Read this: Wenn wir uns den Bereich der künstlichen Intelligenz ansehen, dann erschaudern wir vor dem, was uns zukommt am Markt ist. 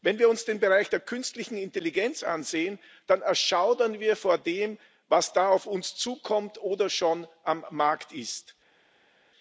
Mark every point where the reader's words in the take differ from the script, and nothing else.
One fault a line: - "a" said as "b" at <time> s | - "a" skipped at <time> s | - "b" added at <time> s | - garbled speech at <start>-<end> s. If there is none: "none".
- "da auf" added at 5.3 s
- "oder schon" added at 6.6 s